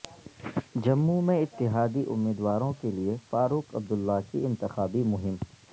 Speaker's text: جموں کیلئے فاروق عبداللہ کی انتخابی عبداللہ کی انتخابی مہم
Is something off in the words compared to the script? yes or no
yes